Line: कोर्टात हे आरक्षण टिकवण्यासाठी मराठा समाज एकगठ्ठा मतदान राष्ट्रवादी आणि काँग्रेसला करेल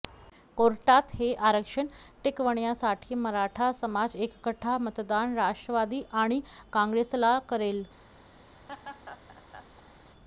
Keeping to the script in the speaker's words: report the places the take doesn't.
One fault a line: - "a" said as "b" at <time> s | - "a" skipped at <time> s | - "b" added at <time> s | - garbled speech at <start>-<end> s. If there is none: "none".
none